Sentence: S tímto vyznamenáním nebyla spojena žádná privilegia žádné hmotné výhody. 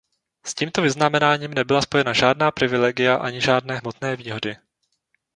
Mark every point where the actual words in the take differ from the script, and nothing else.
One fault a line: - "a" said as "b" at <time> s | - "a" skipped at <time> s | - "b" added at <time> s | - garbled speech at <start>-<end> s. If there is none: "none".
- "ani" added at 3.1 s